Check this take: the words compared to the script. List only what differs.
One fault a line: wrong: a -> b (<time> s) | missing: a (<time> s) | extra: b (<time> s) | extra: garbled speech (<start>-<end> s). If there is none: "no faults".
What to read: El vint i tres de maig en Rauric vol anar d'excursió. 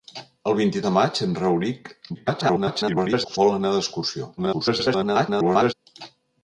missing: tres (0.8 s)
extra: garbled speech (2.1-3.4 s)
extra: garbled speech (4.4-5.7 s)